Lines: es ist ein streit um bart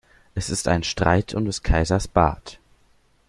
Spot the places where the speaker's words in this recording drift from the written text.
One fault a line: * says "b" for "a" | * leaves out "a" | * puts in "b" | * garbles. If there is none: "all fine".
* puts in "des kaisers"